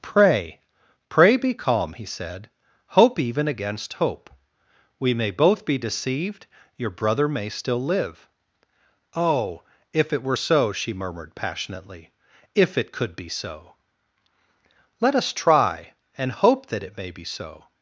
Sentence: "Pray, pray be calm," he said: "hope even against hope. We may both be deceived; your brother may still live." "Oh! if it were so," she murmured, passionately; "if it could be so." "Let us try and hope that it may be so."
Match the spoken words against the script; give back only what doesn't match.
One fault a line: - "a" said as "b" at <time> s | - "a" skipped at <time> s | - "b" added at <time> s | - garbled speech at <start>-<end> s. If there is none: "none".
none